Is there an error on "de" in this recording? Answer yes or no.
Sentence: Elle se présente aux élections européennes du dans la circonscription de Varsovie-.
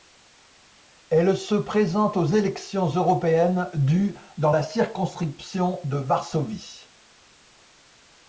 no